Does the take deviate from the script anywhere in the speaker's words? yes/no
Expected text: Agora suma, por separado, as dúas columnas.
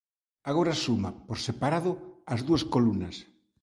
no